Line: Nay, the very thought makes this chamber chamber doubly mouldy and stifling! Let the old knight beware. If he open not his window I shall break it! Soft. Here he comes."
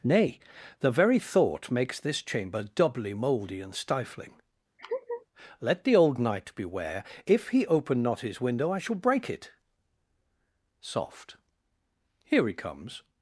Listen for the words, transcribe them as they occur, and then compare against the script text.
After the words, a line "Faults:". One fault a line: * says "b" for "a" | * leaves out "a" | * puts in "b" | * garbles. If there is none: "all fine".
Nay, the very thought makes this chamber doubly mouldy and stifling! Let the old knight beware. If he open not his window I shall break it! Soft. Here he comes."
Faults:
* leaves out "chamber"